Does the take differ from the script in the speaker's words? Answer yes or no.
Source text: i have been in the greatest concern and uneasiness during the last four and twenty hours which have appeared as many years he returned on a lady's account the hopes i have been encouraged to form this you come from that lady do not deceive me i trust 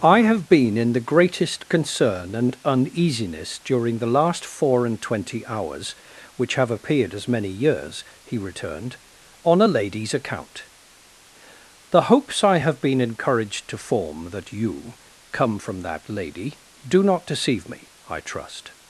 yes